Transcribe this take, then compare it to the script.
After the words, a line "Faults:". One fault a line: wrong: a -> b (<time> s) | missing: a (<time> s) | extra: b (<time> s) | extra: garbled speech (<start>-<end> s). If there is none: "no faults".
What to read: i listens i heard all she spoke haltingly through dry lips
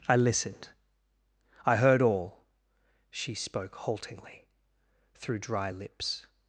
i listened i heard all she spoke haltingly through dry lips
Faults:
wrong: listens -> listened (0.1 s)